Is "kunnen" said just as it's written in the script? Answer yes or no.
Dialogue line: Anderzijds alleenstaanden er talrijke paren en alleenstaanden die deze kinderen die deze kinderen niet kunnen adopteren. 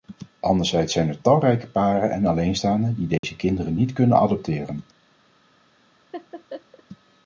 yes